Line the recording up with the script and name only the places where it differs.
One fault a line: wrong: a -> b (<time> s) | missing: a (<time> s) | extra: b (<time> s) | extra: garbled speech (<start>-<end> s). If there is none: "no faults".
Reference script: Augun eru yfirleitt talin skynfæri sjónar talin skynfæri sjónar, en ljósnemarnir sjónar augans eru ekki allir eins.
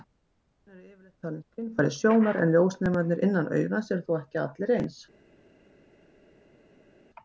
missing: talin skynfæri sjónar (2.4 s)
wrong: sjónar -> innan (3.3 s)
extra: þó (4.1 s)